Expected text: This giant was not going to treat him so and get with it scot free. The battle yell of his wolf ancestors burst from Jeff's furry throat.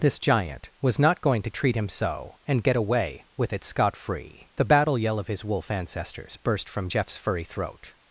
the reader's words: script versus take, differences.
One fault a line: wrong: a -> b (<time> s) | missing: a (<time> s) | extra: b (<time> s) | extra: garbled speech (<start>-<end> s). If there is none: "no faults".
extra: away (2.8 s)